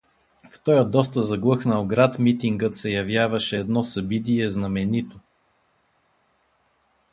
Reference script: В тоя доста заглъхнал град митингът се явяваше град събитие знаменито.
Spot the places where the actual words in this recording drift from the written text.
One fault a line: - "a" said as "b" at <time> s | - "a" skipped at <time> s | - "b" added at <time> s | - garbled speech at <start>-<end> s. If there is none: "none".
- "град" said as "едно" at 3.6 s